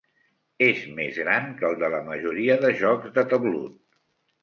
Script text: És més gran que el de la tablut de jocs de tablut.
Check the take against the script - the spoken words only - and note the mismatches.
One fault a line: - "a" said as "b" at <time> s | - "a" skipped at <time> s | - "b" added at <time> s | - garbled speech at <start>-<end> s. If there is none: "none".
- "tablut" said as "majoria" at 2.1 s